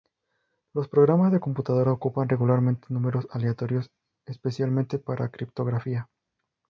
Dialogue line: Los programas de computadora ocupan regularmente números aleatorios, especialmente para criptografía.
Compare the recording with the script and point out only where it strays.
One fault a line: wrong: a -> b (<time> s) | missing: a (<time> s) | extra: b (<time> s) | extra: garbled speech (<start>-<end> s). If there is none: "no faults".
no faults